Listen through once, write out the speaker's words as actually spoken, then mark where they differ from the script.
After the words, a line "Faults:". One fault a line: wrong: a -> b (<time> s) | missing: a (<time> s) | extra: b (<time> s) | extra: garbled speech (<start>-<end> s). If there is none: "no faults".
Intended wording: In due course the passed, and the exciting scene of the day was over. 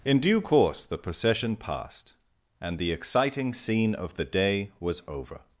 In due course the procession passed, and the exciting scene of the day was over.
Faults:
extra: procession (1.0 s)